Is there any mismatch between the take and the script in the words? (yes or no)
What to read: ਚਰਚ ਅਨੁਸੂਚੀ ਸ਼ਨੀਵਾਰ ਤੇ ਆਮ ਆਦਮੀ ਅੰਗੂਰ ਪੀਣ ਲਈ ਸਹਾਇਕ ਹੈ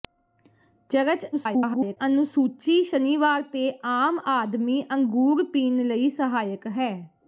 yes